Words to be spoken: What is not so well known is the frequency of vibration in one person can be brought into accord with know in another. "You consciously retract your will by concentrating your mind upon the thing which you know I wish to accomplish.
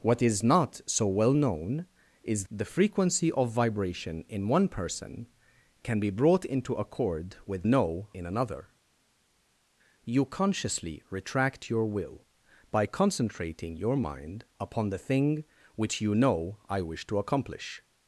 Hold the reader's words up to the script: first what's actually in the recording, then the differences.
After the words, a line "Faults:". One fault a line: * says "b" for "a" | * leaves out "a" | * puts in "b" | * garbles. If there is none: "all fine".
What is not so well known is the frequency of vibration in one person can be brought into accord with know in another. "You consciously retract your will by concentrating your mind upon the thing which you know I wish to accomplish.
Faults:
all fine